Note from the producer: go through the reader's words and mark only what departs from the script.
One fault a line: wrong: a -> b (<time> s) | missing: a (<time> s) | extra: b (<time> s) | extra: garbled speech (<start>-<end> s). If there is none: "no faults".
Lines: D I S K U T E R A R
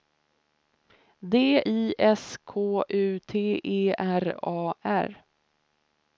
no faults